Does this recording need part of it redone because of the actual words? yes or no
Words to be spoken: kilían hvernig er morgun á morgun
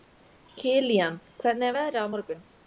yes